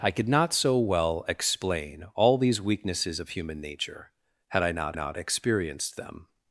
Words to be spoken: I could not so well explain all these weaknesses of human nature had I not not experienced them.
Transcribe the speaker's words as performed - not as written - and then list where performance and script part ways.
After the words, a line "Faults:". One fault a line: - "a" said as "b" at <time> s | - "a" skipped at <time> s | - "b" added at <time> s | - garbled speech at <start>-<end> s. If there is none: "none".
I could not so well explain all these weaknesses of human nature had I not not experienced them.
Faults:
none